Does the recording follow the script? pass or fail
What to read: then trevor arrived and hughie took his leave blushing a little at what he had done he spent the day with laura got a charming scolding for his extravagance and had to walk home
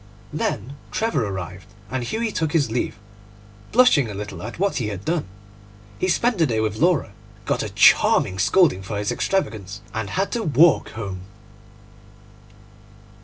pass